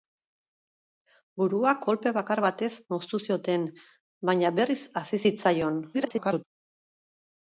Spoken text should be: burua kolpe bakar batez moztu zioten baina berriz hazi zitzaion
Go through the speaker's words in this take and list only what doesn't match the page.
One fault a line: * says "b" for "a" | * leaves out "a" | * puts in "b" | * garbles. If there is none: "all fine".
* garbles